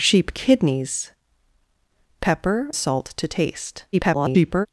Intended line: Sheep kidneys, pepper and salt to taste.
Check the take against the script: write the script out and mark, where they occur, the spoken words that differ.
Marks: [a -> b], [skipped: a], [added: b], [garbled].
Sheep kidneys, pepper [skipped: and] salt to taste. [garbled]